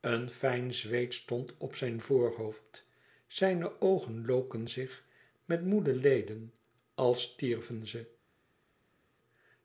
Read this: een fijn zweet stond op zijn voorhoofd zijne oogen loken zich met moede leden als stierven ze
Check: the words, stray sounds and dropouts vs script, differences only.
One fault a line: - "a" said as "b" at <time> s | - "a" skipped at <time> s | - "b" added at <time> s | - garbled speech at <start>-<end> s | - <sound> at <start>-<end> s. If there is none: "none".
none